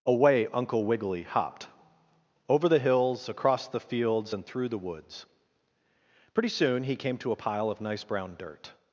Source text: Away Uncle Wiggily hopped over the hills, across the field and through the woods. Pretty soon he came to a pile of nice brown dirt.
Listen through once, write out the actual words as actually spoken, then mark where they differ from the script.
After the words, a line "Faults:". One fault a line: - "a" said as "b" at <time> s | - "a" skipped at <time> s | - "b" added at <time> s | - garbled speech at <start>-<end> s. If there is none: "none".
Away Uncle Wiggily hopped over the hills, across the fields and through the woods. Pretty soon he came to a pile of nice brown dirt.
Faults:
- "field" said as "fields" at 3.8 s